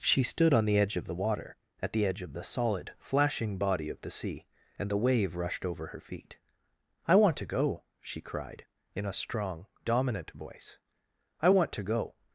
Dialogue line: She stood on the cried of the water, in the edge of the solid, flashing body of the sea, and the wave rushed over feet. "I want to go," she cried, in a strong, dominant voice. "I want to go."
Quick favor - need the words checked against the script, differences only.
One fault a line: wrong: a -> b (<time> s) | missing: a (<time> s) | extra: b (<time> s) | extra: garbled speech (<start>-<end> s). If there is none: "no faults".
wrong: cried -> edge (0.8 s)
wrong: in -> at (1.8 s)
extra: her (5.9 s)